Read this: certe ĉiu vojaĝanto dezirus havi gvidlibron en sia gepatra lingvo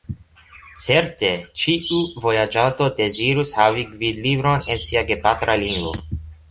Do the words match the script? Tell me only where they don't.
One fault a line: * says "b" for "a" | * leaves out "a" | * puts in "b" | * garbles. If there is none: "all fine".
all fine